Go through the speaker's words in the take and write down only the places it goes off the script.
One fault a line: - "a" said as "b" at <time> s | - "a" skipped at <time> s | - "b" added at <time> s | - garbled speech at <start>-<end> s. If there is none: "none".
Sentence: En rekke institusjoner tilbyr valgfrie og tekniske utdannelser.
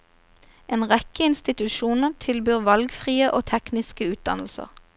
none